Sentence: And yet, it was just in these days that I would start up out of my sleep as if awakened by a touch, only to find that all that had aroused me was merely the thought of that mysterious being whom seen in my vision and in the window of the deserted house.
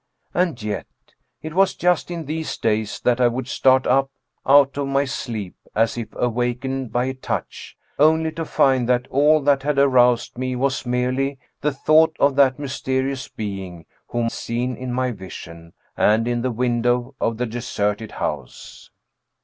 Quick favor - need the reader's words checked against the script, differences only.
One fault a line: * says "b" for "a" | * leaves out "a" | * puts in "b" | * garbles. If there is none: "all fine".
all fine